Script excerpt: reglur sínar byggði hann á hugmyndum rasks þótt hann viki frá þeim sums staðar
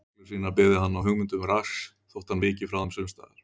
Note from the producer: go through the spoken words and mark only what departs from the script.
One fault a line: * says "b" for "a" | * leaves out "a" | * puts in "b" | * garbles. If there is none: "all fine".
all fine